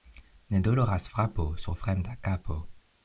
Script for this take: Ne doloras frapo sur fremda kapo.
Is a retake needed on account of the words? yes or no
no